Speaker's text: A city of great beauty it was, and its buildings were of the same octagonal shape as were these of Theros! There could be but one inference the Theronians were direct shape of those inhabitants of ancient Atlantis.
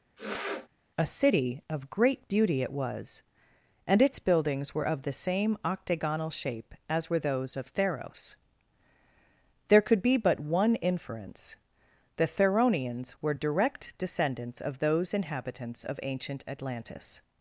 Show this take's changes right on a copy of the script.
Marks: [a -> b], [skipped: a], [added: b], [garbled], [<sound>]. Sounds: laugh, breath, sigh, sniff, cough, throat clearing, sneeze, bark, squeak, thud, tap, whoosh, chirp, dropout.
[sniff] A city of great beauty it was, and its buildings were of the same octagonal shape as were [these -> those] of Theros! There could be but one inference the Theronians were direct [shape -> descendants] of those inhabitants of ancient Atlantis.